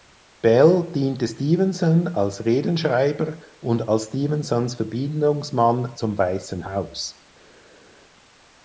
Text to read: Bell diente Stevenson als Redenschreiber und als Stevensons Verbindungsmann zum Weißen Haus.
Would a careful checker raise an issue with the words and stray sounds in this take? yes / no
no